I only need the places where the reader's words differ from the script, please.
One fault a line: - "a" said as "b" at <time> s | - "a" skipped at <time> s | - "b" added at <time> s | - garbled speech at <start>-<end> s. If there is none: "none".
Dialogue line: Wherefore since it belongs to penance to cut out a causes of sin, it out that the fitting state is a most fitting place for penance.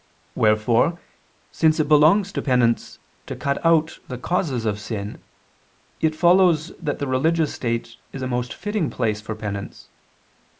- "a" said as "the" at 4.1 s
- "out" said as "follows" at 6.2 s
- "fitting" said as "religious" at 7.1 s